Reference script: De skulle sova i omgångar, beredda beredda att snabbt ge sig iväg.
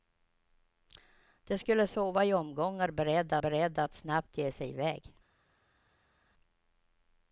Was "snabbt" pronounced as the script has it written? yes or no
yes